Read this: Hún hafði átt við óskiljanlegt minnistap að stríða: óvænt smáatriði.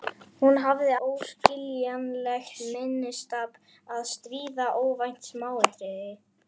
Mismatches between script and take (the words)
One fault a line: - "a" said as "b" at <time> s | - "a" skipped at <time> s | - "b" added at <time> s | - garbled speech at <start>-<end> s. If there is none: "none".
- "átt við" skipped at 0.9 s